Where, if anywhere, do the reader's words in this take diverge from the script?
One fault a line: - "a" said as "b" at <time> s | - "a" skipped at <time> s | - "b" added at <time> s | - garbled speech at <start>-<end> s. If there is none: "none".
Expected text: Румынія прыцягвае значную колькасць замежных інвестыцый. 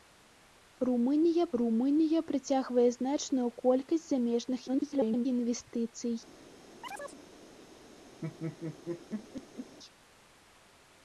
- "румынія" added at 1.6 s
- garbled speech at 4.7-5.3 s